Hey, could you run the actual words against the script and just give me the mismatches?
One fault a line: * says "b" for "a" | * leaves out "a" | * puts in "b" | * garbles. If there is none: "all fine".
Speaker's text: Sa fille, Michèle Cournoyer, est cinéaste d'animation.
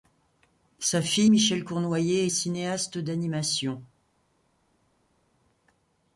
all fine